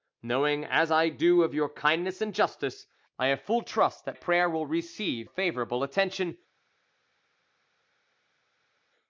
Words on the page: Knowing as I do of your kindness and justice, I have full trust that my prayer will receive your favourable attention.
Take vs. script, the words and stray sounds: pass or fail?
fail